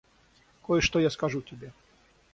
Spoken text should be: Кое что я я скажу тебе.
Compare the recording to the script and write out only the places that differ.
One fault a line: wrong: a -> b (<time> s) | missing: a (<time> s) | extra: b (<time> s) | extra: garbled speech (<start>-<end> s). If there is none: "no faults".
missing: я (1.1 s)